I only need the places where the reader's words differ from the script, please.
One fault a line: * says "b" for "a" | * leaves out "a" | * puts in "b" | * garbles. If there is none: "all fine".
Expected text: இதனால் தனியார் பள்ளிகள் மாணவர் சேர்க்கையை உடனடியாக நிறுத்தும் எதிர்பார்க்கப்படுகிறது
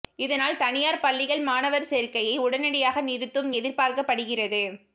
all fine